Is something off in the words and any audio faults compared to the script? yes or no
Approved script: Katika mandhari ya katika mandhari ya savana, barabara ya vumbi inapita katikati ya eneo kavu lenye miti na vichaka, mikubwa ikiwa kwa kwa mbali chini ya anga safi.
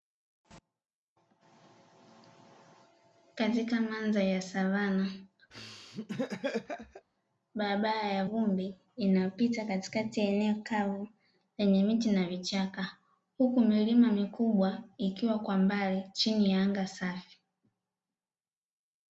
yes